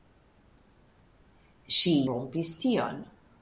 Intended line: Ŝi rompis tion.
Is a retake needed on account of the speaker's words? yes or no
no